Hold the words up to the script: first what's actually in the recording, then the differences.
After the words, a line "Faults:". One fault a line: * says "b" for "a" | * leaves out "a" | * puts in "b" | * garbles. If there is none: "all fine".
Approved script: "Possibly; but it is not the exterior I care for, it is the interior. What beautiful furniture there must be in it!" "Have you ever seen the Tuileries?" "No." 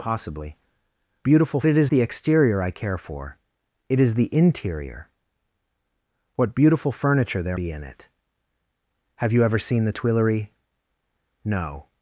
"Possibly; beautiful it is the exterior I care for, it is the interior. What beautiful furniture there be in it!" "Have you ever seen the Tuileries?" "No."
Faults:
* says "beautiful" for "but"
* leaves out "not"
* leaves out "must"